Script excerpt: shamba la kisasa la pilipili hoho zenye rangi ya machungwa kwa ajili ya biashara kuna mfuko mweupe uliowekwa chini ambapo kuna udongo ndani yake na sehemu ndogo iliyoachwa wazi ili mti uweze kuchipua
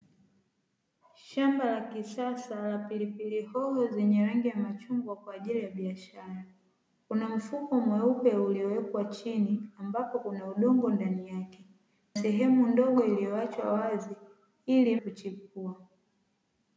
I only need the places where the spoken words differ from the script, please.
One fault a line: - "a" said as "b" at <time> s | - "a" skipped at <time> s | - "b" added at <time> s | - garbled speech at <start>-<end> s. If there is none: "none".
- "na" skipped at 11.7 s
- "mti uweze" skipped at 15.0 s